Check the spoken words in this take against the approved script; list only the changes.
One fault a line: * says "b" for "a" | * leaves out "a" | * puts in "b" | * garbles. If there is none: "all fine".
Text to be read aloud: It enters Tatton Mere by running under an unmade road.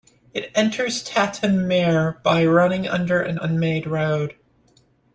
all fine